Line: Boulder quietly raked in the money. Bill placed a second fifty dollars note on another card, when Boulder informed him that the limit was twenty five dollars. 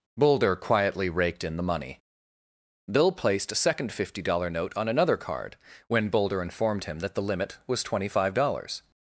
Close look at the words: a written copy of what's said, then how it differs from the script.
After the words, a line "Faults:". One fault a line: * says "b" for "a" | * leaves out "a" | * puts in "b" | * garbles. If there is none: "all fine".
Boulder quietly raked in the money. Bill placed a second fifty dollar note on another card, when Boulder informed him that the limit was twenty five dollars.
Faults:
* says "dollar" for "dollars"